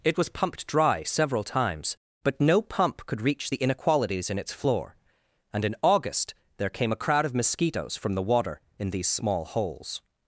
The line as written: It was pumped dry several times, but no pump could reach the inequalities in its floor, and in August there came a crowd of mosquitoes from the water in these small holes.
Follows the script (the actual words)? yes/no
yes